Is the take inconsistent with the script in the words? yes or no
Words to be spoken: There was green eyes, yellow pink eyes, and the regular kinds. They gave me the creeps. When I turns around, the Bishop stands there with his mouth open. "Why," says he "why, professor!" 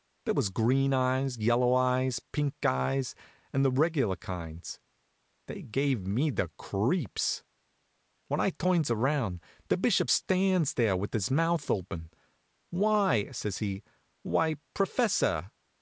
yes